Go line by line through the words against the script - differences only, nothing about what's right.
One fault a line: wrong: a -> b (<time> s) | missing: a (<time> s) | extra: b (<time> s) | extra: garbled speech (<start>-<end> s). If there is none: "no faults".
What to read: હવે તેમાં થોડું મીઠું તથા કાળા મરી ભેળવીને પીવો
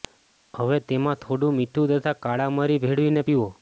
no faults